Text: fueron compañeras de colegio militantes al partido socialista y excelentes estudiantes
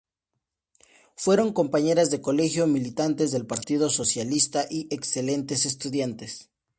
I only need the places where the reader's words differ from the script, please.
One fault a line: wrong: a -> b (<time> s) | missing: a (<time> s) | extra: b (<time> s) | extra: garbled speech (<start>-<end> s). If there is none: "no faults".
wrong: al -> del (3.3 s)